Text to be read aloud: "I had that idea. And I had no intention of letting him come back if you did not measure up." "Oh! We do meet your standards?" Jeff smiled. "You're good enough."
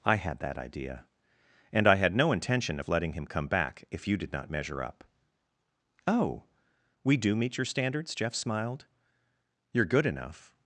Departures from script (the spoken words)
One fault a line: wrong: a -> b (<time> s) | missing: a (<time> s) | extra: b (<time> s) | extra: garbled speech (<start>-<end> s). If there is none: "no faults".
no faults